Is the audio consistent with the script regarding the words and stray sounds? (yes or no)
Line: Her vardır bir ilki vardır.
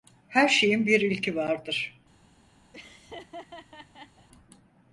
no